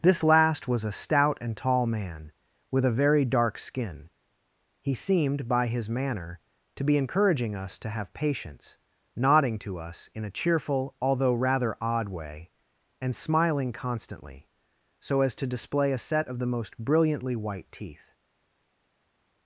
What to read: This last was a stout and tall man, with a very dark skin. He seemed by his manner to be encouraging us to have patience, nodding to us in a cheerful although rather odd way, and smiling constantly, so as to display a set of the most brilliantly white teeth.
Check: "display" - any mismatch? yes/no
no